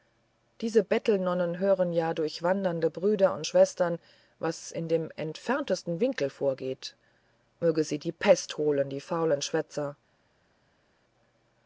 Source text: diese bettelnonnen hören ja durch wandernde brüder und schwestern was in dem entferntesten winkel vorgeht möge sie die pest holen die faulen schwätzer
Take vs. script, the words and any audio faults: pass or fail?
pass